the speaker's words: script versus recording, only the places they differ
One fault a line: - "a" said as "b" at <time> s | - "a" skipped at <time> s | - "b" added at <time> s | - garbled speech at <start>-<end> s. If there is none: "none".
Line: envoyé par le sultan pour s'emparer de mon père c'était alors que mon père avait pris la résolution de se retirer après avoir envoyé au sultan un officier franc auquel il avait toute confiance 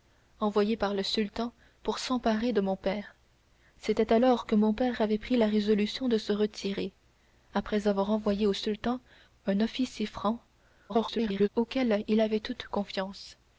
- garbled speech at 10.9-11.5 s